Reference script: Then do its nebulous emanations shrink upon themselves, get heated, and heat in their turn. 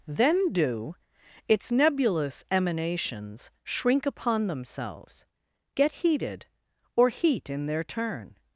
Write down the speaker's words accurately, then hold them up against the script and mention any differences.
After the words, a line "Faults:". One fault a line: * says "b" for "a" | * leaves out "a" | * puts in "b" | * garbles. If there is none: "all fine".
Then do its nebulous emanations shrink upon themselves, get heated, or heat in their turn.
Faults:
* says "or" for "and"